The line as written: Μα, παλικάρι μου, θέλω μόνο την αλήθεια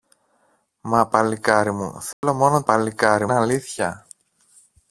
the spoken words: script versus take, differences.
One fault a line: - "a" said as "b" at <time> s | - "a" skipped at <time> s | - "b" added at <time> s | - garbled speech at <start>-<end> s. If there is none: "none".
- "την" said as "παλικάρι" at 2.6 s